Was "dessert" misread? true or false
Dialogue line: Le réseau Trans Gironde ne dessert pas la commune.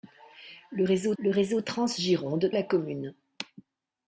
true